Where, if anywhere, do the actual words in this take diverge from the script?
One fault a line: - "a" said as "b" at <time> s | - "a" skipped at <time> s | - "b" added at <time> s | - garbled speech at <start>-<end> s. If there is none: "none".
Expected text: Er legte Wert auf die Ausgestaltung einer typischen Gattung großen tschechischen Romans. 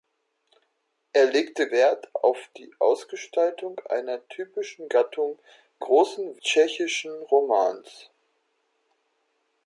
none